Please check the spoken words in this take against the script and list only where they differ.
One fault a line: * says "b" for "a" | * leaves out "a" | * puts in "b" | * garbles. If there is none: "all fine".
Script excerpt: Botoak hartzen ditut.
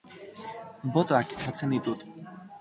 all fine